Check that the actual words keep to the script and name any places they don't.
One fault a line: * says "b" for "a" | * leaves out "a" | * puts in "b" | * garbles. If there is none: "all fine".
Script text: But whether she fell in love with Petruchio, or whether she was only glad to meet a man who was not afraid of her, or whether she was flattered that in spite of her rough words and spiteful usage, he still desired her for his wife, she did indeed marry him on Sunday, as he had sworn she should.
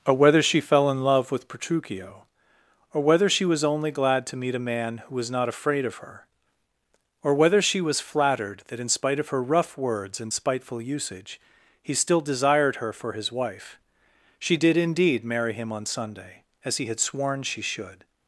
* says "Or" for "But"